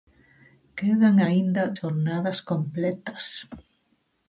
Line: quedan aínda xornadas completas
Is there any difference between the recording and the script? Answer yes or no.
no